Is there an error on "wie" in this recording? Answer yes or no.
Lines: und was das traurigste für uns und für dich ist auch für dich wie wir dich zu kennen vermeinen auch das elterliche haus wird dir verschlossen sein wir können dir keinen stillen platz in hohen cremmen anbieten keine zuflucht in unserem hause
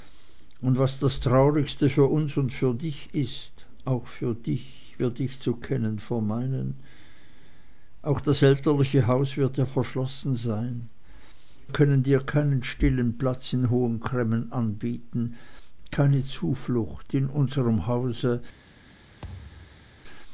yes